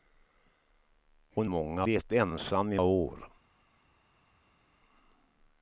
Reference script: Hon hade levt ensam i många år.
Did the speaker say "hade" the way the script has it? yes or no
no